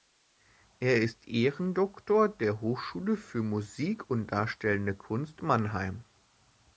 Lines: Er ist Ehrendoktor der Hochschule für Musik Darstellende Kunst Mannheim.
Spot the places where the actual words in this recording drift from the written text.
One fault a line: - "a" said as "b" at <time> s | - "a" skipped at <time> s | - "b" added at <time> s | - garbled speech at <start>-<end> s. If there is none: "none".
- "und" added at 4.1 s